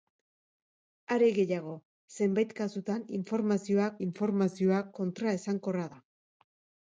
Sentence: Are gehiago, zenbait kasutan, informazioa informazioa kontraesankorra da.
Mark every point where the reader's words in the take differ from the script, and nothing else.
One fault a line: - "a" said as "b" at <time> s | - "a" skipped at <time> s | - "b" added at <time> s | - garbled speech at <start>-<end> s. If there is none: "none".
none